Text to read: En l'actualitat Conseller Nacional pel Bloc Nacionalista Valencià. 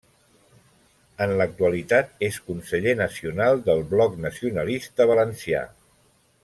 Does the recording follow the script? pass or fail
fail